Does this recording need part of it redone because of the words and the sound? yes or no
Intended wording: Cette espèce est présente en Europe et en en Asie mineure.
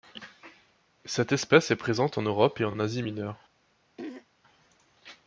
yes